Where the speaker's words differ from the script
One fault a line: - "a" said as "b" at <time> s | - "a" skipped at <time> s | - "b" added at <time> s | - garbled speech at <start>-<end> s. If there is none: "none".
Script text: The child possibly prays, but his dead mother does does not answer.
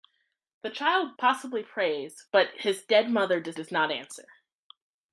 none